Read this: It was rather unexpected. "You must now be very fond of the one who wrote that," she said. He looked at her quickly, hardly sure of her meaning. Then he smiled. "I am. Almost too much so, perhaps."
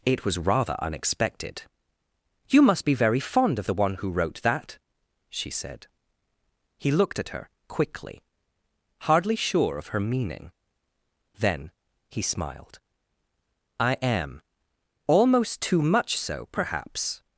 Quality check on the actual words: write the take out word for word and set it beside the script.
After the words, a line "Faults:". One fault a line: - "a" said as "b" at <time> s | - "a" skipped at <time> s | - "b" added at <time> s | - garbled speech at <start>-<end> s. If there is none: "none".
It was rather unexpected. "You must be very fond of the one who wrote that," she said. He looked at her quickly, hardly sure of her meaning. Then he smiled. "I am. Almost too much so, perhaps."
Faults:
- "now" skipped at 2.9 s